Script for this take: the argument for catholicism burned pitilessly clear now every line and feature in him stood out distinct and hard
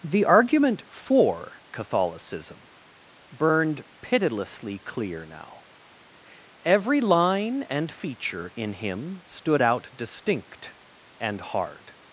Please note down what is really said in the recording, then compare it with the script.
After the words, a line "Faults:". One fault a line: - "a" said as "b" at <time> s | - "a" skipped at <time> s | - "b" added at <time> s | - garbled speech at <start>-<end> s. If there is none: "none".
the argument for catholicism burned pitilessly clear now every line and feature in him stood out distinct and hard
Faults:
none